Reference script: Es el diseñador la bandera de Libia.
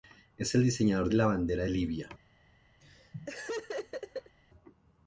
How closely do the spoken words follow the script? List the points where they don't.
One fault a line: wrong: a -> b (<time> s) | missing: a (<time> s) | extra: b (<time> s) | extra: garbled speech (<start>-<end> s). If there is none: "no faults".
no faults